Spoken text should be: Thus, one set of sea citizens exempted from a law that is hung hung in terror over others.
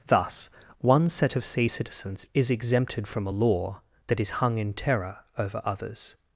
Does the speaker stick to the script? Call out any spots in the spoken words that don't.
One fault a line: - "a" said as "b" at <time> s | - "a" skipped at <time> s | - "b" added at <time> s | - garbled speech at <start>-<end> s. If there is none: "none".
- "is" added at 2.3 s
- "hung" skipped at 4.6 s